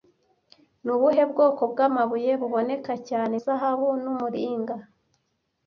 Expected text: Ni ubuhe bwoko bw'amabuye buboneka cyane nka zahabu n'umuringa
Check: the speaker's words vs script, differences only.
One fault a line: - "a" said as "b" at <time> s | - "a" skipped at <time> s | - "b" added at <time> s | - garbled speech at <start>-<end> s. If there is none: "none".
- "nka" skipped at 3.4 s